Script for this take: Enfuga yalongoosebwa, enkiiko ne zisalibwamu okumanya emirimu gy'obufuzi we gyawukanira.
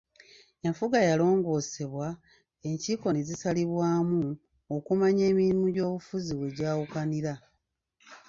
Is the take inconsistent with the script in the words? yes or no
no